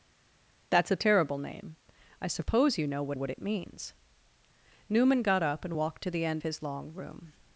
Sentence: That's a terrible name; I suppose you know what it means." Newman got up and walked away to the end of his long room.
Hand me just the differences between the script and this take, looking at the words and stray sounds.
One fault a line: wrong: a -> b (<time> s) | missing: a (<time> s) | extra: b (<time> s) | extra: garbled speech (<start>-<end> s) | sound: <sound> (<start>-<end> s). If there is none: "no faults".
extra: what (3.1 s)
missing: away (6.0 s)
missing: of (6.4 s)